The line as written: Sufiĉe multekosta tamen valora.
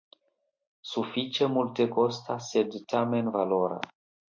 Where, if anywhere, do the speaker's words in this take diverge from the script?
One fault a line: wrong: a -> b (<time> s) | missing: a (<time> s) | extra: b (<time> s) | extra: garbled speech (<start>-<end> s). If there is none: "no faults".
extra: sed (2.5 s)